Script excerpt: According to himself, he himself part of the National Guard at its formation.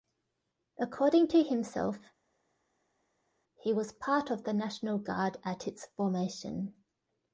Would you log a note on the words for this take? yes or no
yes